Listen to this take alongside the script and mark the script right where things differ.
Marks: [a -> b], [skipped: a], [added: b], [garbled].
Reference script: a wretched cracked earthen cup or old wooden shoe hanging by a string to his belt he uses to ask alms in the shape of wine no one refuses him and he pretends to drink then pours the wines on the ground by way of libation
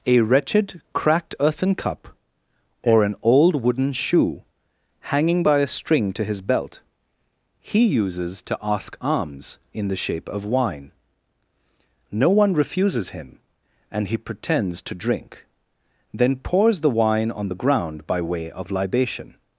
a wretched cracked earthen cup or [added: an] old wooden shoe hanging by a string to his belt he uses to ask alms in the shape of wine no one refuses him and he pretends to drink then pours the [wines -> wine] on the ground by way of libation